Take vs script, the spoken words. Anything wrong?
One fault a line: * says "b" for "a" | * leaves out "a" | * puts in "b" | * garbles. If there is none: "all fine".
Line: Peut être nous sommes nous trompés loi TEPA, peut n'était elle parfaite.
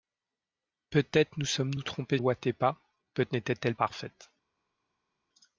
all fine